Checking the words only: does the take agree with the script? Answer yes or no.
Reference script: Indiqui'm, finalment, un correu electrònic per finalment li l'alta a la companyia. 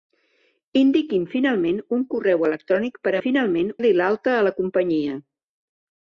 yes